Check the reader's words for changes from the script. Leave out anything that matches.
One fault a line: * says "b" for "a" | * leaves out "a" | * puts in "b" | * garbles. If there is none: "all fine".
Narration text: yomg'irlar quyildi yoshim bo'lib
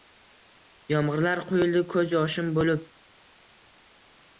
* puts in "ko'z"